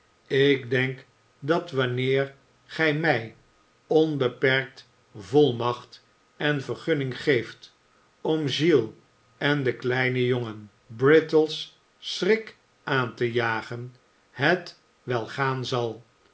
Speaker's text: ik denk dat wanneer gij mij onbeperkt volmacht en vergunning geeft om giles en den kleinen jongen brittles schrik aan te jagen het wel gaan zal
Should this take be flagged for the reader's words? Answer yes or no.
no